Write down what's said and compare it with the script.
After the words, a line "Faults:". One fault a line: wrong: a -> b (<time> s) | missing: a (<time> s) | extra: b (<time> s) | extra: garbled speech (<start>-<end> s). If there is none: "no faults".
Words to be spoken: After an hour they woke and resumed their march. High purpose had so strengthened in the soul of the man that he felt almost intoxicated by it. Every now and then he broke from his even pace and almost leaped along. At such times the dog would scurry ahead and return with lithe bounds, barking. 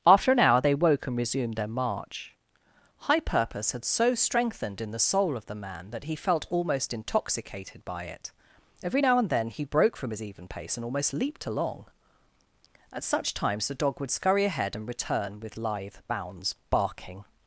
After an hour they woke and resumed their march. High purpose had so strengthened in the soul of the man that he felt almost intoxicated by it. Every now and then he broke from his even pace and almost leaped along. At such times the dog would scurry ahead and return with lithe bounds, barking.
Faults:
no faults